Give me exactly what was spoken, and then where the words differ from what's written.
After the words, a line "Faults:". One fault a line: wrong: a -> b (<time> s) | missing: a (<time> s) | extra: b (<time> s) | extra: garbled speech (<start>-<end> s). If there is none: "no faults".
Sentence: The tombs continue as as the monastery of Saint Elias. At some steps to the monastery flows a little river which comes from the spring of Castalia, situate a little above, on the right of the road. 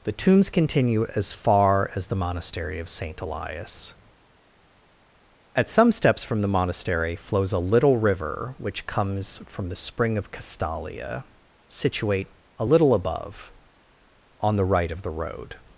The tombs continue as far as the monastery of Saint Elias. At some steps from the monastery flows a little river which comes from the spring of Castalia, situate a little above, on the right of the road.
Faults:
extra: far (1.3 s)
wrong: to -> from (6.2 s)